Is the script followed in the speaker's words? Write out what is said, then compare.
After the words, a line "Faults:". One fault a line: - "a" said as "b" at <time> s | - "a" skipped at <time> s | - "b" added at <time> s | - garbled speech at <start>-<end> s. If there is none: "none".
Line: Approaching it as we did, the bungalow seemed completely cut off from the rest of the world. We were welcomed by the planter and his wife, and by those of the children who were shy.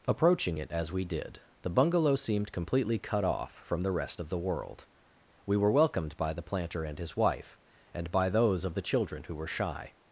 Approaching it as we did, the bungalow seemed completely cut off from the rest of the world. We were welcomed by the planter and his wife, and by those of the children who were shy.
Faults:
none